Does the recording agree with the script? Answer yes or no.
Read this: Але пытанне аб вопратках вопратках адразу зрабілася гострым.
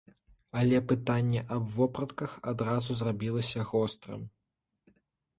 no